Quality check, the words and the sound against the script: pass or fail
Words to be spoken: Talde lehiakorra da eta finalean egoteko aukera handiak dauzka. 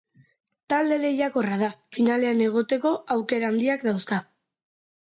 fail